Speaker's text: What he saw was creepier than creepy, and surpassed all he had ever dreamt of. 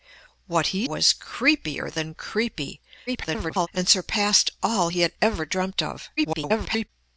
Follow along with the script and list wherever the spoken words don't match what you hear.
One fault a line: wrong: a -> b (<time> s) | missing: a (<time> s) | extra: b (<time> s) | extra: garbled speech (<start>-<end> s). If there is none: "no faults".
missing: saw (0.9 s)
extra: garbled speech (3.1-3.7 s)
extra: garbled speech (6.2-6.9 s)